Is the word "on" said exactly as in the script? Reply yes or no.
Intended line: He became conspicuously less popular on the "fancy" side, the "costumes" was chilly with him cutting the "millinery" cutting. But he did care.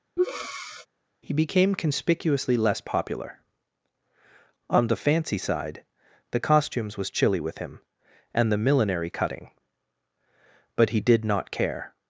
yes